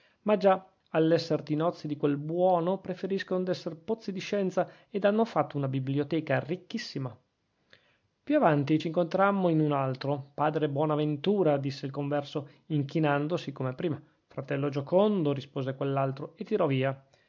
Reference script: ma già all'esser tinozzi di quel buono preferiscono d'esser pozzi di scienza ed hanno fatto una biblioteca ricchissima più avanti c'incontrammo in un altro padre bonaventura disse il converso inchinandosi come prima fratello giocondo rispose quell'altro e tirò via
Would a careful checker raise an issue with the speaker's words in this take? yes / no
no